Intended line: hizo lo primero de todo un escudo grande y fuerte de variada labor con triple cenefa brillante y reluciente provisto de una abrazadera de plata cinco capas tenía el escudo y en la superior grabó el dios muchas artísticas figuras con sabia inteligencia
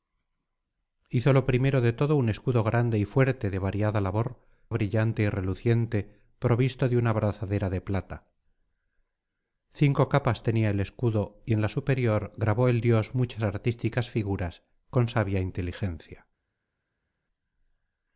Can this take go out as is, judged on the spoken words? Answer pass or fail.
fail